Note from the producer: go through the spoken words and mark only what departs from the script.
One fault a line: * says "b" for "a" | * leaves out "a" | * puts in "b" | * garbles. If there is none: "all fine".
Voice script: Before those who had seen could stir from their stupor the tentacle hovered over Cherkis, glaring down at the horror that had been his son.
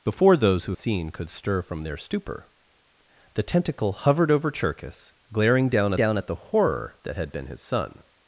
* leaves out "had"
* puts in "down"